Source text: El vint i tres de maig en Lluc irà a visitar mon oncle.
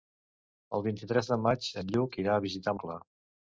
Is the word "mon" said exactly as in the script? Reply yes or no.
no